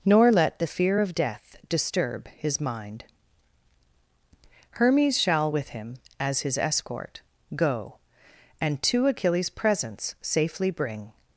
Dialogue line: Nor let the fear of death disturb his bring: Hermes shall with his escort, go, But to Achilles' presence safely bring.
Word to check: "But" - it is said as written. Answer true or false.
false